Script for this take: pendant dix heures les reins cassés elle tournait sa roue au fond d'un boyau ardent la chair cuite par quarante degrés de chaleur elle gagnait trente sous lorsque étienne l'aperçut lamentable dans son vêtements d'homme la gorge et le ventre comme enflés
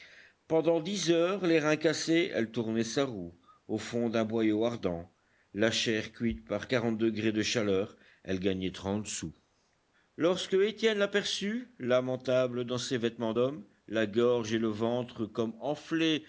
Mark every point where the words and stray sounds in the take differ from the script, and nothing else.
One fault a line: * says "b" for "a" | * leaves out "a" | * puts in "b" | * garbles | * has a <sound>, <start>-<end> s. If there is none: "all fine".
* says "ses" for "son"